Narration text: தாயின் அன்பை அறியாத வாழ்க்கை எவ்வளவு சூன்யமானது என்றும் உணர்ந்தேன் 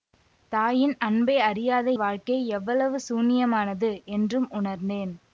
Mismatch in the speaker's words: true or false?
false